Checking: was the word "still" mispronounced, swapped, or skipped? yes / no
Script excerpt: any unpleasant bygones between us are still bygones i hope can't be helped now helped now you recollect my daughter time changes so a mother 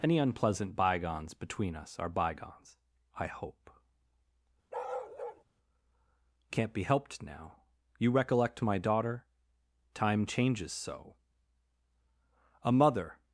yes